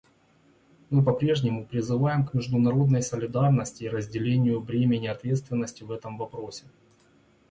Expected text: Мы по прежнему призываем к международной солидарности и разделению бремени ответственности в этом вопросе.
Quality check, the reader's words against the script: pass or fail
pass